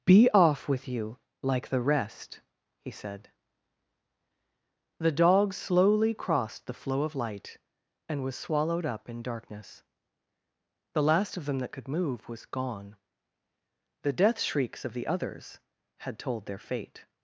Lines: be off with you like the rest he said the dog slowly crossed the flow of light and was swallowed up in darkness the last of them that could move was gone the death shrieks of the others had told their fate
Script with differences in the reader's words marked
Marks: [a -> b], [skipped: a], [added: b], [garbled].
be off with you like the rest he said the dog slowly crossed the flow of light and was swallowed up in darkness the last of them that could move was gone the death shrieks of the others had told their fate